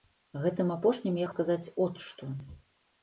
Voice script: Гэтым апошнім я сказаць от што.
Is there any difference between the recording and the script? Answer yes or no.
no